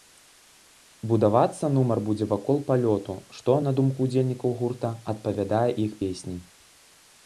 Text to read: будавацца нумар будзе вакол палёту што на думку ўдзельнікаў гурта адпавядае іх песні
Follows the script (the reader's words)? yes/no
yes